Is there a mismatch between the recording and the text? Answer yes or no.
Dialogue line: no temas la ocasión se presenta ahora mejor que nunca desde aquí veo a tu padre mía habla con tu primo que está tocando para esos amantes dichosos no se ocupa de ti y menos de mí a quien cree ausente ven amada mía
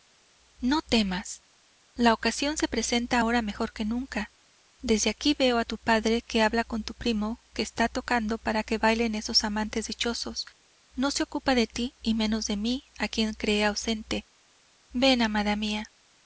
yes